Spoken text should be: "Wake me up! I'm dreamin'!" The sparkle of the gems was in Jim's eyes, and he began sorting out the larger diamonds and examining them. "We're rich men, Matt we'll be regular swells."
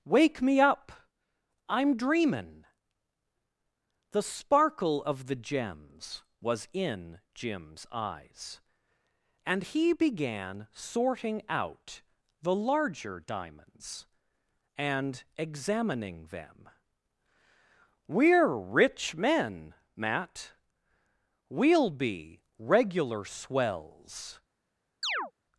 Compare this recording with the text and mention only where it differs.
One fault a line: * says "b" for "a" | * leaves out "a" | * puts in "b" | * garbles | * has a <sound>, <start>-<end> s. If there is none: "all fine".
* has a chirp, 25.0-25.3 s